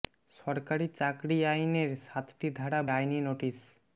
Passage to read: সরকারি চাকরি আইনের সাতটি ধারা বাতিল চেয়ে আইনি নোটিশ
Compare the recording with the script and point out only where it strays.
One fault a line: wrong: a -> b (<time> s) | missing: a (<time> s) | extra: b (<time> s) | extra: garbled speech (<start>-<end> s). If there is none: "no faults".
missing: বাতিল চেয়ে (2.8 s)